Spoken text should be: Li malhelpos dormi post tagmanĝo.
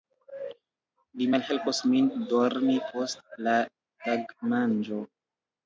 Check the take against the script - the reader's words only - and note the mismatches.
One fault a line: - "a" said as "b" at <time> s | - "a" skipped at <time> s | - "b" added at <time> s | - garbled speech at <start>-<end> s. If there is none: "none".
- "min" added at 2.0 s
- "la" added at 3.5 s